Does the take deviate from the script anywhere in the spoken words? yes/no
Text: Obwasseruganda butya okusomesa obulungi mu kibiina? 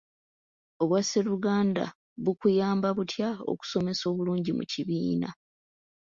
yes